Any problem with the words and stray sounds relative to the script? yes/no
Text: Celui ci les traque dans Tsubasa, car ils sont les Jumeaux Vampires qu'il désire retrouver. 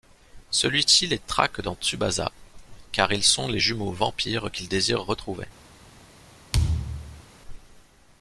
yes